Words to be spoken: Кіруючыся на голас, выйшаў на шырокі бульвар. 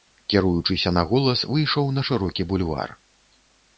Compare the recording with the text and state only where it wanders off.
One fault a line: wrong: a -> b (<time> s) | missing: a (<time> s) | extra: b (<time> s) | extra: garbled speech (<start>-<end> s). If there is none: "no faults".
no faults